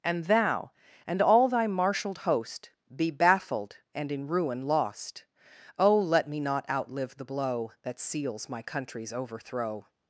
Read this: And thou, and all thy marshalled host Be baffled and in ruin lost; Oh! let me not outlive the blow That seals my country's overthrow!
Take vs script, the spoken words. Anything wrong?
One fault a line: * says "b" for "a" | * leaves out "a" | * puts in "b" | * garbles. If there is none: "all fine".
all fine